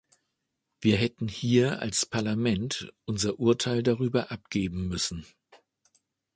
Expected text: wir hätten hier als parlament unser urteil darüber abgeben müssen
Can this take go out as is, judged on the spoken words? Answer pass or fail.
pass